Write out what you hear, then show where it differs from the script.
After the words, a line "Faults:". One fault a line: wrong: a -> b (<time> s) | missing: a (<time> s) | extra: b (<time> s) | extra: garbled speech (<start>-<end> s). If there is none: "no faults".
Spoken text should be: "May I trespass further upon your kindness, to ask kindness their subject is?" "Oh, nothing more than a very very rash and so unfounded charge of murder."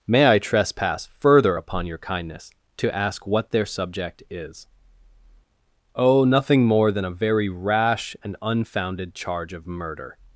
"May I trespass further upon your kindness, to ask what their subject is?" "Oh, nothing more than a very rash and unfounded charge of murder."
Faults:
wrong: kindness -> what (3.2 s)
missing: very (7.5 s)
missing: so (8.4 s)